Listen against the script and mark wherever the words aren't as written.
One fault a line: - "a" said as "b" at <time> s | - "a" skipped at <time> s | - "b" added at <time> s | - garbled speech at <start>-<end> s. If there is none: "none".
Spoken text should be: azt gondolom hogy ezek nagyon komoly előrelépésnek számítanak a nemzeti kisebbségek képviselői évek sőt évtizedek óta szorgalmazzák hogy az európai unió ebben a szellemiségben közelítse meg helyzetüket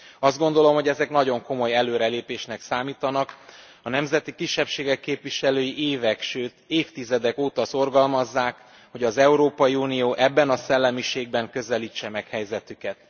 none